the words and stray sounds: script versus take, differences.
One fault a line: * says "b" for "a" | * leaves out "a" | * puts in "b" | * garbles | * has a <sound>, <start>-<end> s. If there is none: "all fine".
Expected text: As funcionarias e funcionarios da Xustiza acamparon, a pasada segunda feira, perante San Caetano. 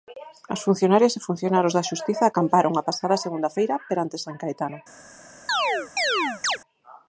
* has a chirp, 5.5-6.6 s